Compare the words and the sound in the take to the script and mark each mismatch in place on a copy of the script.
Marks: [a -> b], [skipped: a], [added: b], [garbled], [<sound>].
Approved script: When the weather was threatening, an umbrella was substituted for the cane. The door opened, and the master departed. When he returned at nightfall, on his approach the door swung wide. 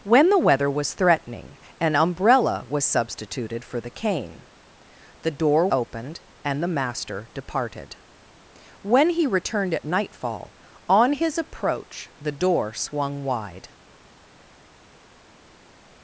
When the weather was threatening, an umbrella was substituted for the cane. The door opened, and the master departed. When he returned at nightfall, on his approach the door swung wide.